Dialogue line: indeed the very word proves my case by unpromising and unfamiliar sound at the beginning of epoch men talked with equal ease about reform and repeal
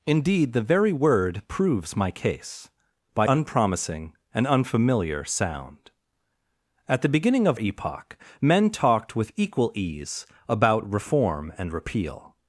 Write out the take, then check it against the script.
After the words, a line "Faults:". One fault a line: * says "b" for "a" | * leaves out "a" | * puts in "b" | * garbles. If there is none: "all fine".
indeed the very word proves my case by unpromising and unfamiliar sound at the beginning of epoch men talked with equal ease about reform and repeal
Faults:
all fine